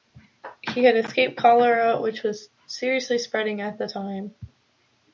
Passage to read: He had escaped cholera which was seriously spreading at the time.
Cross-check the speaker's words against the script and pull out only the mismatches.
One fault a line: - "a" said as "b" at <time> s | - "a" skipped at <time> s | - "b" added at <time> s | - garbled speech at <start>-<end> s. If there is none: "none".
none